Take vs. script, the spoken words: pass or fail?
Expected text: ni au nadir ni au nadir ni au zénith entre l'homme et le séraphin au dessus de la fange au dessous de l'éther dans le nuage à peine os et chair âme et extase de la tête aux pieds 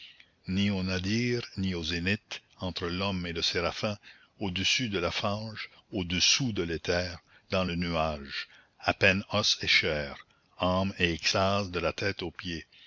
fail